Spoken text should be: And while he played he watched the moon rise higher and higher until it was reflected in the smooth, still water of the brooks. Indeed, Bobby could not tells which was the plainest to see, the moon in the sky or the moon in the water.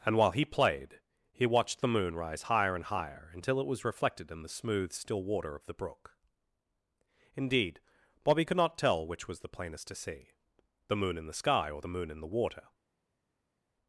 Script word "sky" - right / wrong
right